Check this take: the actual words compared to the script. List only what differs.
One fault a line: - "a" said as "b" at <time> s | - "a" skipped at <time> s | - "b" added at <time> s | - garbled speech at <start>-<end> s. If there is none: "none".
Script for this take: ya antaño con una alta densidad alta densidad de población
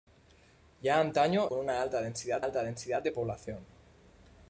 none